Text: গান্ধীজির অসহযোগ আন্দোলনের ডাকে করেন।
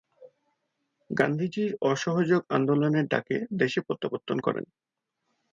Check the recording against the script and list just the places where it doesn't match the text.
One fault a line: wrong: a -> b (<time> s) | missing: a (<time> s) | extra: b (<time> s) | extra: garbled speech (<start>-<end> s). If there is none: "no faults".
extra: দেশে প্রত্যাবর্তন (3.5 s)